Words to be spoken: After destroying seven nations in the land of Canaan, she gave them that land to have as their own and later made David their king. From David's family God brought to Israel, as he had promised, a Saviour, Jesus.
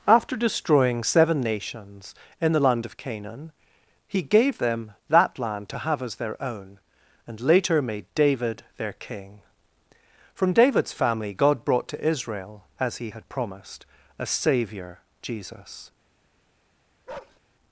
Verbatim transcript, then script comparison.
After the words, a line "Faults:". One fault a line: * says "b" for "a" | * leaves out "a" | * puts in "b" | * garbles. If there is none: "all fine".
After destroying seven nations in the land of Canaan, he gave them that land to have as their own and later made David their king. From David's family God brought to Israel, as he had promised, a Saviour, Jesus.
Faults:
* says "he" for "she"